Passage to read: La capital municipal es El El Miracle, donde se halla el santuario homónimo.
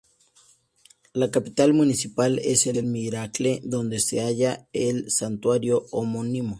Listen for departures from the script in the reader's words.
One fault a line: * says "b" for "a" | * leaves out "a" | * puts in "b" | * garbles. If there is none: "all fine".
all fine